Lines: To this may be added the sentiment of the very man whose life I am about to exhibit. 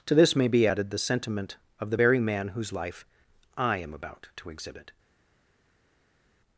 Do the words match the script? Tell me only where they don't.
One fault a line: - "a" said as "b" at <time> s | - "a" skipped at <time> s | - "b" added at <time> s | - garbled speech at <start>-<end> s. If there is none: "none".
none